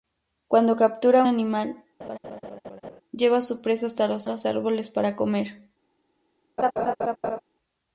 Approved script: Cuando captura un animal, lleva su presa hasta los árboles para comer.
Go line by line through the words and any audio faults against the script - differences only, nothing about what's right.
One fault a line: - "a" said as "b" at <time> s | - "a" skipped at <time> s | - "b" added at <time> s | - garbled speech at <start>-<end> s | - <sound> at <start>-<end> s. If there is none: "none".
- "un" skipped at 1.2 s
- laugh at 2.0-3.0 s
- "los" added at 4.3 s
- laugh at 6.6-7.4 s